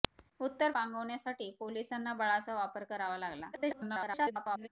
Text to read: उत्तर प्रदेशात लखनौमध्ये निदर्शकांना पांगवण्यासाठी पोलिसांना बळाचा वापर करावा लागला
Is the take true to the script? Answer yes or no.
no